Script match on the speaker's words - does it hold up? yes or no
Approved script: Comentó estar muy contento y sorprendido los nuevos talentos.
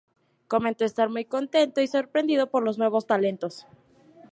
no